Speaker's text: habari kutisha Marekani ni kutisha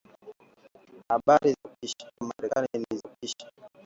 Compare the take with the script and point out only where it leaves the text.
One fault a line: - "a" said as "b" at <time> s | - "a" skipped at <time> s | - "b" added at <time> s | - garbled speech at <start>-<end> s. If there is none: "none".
none